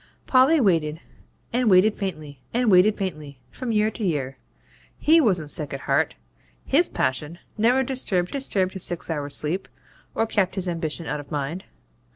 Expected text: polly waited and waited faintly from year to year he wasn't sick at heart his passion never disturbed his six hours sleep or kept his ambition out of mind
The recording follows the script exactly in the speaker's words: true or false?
false